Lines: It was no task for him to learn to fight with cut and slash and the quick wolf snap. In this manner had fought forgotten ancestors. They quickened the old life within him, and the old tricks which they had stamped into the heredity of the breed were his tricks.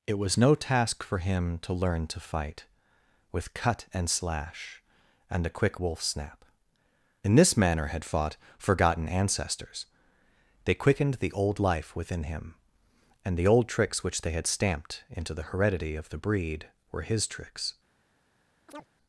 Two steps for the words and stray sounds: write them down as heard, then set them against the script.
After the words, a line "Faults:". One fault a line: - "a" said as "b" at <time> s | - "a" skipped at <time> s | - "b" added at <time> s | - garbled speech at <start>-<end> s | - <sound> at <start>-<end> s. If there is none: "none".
It was no task for him to learn to fight with cut and slash and a quick wolf snap. In this manner had fought forgotten ancestors. They quickened the old life within him, and the old tricks which they had stamped into the heredity of the breed were his tricks.
Faults:
- "the" said as "a" at 5.5 s
- chirp at 18.7-18.9 s